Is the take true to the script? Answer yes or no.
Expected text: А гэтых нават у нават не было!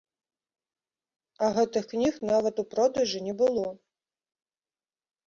no